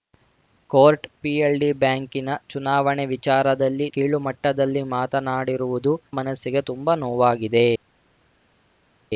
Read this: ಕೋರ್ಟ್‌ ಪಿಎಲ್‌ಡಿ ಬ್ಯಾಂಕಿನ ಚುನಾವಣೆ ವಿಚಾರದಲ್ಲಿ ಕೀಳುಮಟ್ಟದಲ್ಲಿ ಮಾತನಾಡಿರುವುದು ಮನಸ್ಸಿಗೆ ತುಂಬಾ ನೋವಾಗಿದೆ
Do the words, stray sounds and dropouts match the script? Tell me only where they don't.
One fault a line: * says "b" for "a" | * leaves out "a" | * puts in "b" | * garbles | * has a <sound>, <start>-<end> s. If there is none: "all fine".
all fine